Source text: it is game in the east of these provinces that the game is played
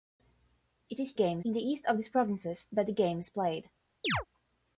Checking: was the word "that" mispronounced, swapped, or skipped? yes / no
no